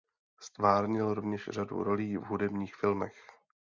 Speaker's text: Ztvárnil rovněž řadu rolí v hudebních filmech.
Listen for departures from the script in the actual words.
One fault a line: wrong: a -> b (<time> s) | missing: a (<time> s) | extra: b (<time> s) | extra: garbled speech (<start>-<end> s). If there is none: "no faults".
no faults